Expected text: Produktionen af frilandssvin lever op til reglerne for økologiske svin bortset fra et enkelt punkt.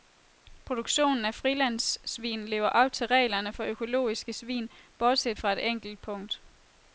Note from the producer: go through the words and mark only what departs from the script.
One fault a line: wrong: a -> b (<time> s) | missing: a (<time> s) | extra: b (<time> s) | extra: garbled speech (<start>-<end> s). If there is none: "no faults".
no faults